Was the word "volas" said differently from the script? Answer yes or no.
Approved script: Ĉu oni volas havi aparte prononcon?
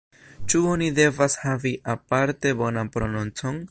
yes